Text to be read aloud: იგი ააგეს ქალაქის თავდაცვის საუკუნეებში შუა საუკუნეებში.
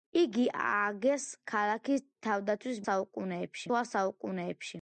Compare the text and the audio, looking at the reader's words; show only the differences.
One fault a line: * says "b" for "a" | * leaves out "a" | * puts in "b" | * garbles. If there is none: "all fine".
all fine